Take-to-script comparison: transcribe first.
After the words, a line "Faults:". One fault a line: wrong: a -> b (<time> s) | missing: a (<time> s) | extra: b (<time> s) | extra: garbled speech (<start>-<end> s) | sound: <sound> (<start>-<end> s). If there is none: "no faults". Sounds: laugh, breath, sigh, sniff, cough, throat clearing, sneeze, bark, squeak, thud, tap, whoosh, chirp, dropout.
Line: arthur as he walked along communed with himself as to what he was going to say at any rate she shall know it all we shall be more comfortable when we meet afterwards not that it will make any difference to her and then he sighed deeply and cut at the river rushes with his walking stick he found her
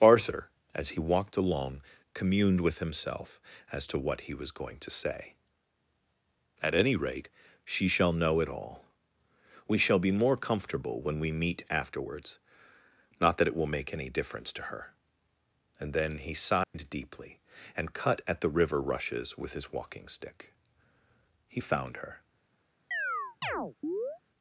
arthur as he walked along communed with himself as to what he was going to say at any rate she shall know it all we shall be more comfortable when we meet afterwards not that it will make any difference to her and then he sighed deeply and cut at the river rushes with his walking stick he found her
Faults:
sound: dropout (16.6-16.7 s)
sound: chirp (22.9-24.2 s)